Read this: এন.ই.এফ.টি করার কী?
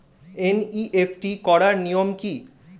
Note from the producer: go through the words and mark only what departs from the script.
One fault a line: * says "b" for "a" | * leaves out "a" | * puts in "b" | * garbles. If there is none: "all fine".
* puts in "নিয়ম"